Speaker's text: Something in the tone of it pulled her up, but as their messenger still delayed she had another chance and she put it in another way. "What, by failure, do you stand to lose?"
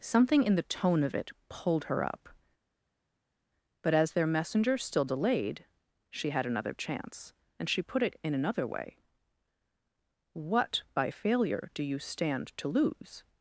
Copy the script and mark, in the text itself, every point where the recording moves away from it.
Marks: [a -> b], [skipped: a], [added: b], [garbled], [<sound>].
Something in the tone of it pulled her up, but as their messenger still delayed she had another chance and she put it in another way. "What, by failure, do you stand to lose?"